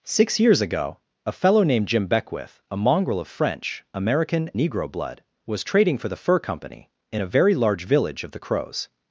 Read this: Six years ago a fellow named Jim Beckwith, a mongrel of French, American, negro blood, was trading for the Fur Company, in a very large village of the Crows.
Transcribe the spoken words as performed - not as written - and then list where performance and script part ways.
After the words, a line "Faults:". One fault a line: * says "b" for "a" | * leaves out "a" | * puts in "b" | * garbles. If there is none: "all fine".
Six years ago a fellow named Jim Beckwith, a mongrel of French, American, negro blood, was trading for the Fur Company, in a very large village of the Crows.
Faults:
all fine